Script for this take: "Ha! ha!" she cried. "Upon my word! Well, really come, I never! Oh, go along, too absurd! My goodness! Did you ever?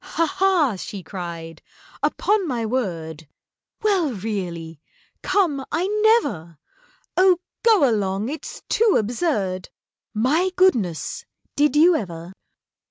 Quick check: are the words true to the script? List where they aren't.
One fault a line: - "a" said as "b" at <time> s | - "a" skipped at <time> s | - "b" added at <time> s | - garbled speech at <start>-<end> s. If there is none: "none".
- "it's" added at 8.3 s